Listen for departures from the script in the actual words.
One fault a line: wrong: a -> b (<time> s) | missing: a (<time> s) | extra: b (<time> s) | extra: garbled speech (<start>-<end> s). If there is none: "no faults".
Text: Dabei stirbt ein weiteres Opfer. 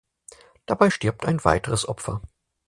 no faults